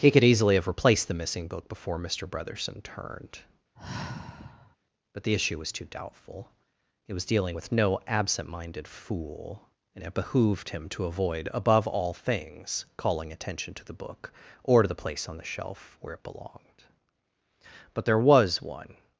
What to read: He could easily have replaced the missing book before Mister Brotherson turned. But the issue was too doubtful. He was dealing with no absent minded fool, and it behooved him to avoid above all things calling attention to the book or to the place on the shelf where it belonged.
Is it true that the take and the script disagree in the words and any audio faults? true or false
true